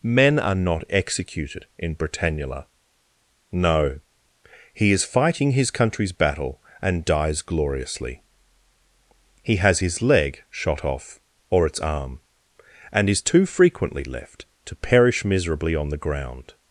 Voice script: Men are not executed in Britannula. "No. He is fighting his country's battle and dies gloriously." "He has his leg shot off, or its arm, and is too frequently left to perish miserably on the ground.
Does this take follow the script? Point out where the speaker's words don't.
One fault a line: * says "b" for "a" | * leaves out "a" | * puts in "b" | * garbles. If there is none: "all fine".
all fine